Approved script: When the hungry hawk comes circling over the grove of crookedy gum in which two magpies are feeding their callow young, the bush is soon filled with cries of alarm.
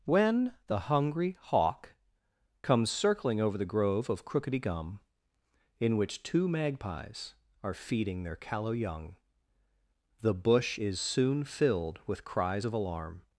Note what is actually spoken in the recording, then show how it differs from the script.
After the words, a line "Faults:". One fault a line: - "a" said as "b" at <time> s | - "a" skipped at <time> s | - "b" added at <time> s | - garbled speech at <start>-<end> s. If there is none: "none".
When the hungry hawk comes circling over the grove of crookedy gum in which two magpies are feeding their callow young, the bush is soon filled with cries of alarm.
Faults:
none